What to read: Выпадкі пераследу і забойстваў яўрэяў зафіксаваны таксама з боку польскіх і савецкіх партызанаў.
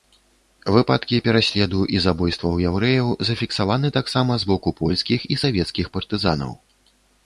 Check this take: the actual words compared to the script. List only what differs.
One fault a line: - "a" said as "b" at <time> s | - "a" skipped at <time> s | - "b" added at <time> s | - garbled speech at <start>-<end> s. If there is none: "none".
none